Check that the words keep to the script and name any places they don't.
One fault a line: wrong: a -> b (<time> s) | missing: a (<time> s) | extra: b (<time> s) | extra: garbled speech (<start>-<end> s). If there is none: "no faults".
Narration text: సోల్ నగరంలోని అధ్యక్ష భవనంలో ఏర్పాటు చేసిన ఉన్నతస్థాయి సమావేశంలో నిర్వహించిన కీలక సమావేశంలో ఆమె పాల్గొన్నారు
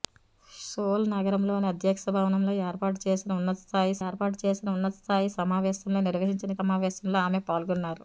extra: ఏర్పాటు చేసిన ఉన్నతస్థాయి (4.0 s)
missing: కీలక (6.5 s)